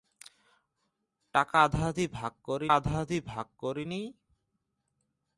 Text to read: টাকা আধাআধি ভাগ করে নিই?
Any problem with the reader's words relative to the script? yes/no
yes